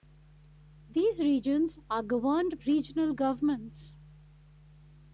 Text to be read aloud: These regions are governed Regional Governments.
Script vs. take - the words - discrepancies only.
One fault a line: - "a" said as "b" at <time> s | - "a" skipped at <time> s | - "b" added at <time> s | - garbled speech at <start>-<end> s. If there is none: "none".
none